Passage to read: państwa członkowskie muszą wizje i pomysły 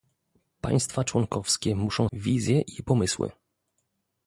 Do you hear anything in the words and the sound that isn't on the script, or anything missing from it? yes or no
no